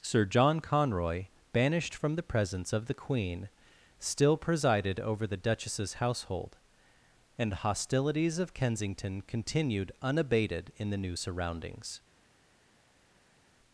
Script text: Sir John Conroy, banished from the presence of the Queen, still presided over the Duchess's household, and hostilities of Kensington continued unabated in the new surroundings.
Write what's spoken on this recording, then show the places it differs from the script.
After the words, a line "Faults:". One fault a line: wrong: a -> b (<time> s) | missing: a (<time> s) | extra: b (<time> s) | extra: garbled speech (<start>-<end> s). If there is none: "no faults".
Sir John Conroy, banished from the presence of the Queen, still presided over the Duchess's household, and hostilities of Kensington continued unabated in the new surroundings.
Faults:
no faults